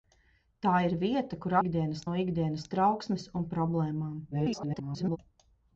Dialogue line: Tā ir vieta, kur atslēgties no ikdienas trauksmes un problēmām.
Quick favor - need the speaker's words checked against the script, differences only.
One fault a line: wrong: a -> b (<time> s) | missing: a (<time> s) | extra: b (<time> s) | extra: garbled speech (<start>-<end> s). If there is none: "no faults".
wrong: atslēgties -> ikdienas (1.6 s)
extra: garbled speech (4.3-5.2 s)